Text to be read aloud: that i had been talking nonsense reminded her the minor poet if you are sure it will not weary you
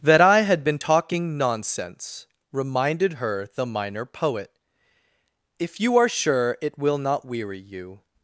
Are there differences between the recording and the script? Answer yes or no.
no